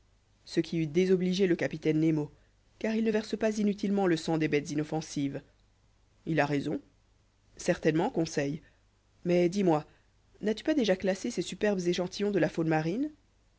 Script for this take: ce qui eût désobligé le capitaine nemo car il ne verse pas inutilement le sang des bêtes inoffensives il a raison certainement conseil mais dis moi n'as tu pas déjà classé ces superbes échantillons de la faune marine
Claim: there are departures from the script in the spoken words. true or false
false